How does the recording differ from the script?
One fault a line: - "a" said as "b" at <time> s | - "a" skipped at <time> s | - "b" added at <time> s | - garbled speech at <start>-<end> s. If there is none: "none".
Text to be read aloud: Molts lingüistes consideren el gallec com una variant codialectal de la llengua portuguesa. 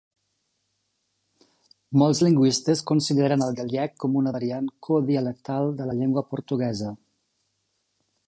none